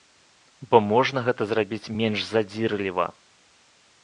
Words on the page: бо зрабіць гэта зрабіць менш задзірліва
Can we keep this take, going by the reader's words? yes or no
no